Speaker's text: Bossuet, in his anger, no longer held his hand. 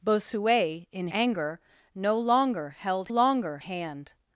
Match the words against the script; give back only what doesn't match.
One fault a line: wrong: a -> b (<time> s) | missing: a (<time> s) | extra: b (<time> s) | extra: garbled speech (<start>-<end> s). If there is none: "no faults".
missing: his (1.1 s)
wrong: his -> longer (3.1 s)